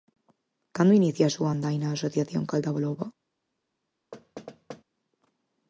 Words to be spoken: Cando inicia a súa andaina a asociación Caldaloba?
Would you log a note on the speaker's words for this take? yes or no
no